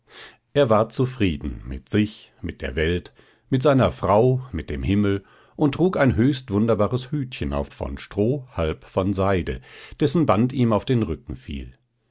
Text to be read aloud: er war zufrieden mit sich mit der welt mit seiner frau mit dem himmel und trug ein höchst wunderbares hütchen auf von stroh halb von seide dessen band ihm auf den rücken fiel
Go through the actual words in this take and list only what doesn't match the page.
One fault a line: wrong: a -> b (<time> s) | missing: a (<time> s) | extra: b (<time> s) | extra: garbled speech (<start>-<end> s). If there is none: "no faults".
no faults